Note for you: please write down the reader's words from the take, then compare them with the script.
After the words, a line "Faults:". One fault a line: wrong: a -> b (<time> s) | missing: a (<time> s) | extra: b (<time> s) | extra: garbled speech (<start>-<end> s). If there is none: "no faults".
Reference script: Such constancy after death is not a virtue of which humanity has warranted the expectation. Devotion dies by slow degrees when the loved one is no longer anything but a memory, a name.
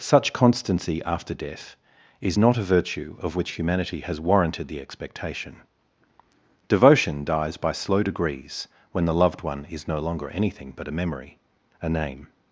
Such constancy after death is not a virtue of which humanity has warranted the expectation. Devotion dies by slow degrees when the loved one is no longer anything but a memory, a name.
Faults:
no faults